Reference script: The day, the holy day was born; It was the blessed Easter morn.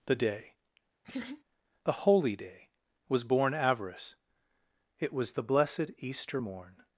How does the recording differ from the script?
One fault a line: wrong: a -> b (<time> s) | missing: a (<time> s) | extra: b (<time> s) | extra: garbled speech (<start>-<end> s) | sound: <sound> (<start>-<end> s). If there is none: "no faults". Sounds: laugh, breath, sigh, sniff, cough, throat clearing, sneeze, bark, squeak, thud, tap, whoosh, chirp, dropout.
sound: laugh (1.0-1.4 s)
extra: avarice (3.5 s)